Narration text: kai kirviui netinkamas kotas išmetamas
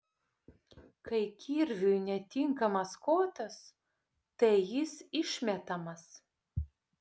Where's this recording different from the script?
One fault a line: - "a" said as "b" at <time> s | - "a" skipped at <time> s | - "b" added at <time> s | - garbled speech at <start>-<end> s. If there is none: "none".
- "tai jis" added at 4.4 s